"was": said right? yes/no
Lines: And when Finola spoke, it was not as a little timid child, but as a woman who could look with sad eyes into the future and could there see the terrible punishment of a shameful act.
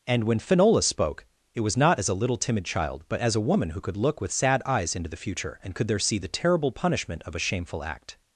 yes